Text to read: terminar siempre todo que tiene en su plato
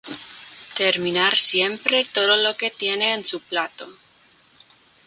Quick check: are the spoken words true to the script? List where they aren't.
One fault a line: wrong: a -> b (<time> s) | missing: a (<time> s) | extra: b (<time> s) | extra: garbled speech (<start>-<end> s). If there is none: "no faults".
extra: lo (2.4 s)